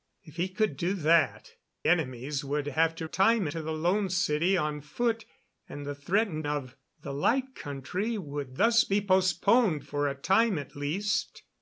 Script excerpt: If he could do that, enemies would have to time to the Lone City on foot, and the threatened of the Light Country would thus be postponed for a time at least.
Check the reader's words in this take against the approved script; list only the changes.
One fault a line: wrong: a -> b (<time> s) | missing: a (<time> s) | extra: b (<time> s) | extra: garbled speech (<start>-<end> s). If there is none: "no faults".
no faults